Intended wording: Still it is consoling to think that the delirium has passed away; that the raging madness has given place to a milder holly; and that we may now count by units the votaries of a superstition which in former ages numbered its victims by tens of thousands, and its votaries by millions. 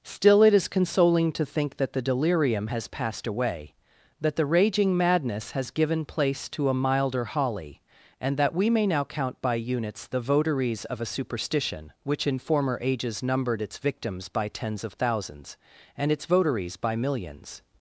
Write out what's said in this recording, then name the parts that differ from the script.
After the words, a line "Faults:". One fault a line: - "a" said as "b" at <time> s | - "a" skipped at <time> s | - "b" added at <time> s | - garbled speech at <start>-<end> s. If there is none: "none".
Still it is consoling to think that the delirium has passed away; that the raging madness has given place to a milder holly; and that we may now count by units the votaries of a superstition which in former ages numbered its victims by tens of thousands, and its votaries by millions.
Faults:
none